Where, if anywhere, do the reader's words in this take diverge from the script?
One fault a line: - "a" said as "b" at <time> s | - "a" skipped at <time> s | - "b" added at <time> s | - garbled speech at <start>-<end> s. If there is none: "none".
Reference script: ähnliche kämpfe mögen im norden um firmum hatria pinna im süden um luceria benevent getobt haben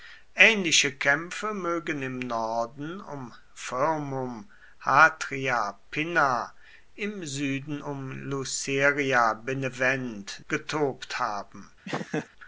none